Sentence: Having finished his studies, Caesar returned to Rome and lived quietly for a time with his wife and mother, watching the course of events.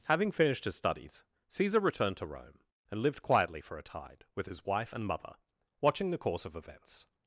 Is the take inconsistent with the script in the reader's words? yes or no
yes